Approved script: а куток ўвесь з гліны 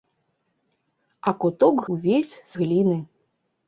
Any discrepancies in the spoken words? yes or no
no